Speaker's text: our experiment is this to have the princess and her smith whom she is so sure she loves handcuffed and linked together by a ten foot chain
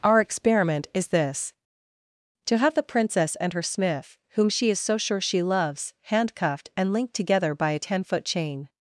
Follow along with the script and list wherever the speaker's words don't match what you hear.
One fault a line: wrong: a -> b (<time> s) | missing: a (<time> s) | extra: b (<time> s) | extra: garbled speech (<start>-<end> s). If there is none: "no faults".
no faults